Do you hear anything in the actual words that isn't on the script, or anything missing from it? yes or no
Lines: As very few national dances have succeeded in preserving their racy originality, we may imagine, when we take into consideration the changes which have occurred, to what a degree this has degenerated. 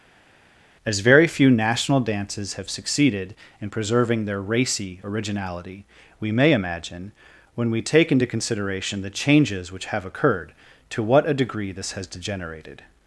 no